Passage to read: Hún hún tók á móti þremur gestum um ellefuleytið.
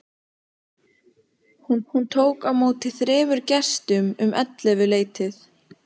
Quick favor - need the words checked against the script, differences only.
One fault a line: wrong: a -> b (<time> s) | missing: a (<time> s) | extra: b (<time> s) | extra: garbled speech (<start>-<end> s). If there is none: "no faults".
no faults